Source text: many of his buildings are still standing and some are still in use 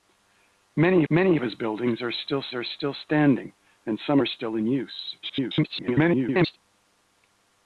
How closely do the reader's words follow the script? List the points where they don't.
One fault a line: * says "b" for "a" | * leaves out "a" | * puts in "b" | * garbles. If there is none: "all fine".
* puts in "many"
* puts in "are still"
* garbles